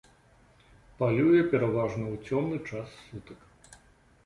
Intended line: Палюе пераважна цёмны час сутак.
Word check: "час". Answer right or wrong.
right